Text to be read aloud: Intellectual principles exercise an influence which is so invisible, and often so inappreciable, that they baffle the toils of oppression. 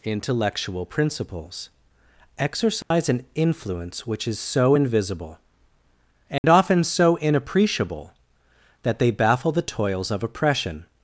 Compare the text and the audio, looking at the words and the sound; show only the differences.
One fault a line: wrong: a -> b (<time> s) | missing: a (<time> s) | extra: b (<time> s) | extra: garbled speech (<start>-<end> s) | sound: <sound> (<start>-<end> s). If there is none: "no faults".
sound: dropout (2.8-2.9 s)
sound: dropout (6.4-6.4 s)